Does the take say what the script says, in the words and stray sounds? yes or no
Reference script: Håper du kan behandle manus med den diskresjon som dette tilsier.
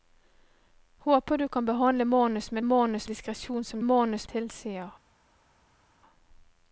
no